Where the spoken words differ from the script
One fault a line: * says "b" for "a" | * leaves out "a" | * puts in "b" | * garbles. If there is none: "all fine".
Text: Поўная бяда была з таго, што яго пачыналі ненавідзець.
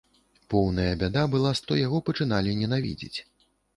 * leaves out "таго"